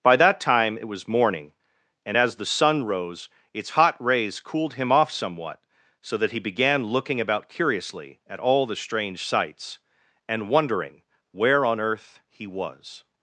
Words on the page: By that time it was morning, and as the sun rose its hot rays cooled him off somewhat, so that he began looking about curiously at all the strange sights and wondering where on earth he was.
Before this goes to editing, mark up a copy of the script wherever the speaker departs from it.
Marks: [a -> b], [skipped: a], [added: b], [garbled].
By that time it was morning, and as the sun rose its hot rays cooled him off somewhat, so that he began looking about curiously at all the strange sights and wondering where on earth he was.